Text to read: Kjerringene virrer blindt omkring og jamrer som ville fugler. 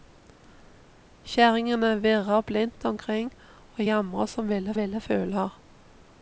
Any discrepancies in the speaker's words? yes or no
yes